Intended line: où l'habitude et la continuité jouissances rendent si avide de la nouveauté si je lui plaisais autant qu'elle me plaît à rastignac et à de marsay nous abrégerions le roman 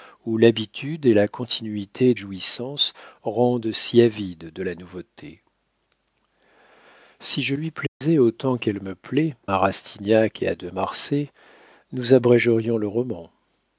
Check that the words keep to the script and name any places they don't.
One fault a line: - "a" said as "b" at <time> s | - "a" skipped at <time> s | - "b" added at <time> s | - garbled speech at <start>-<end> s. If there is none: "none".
none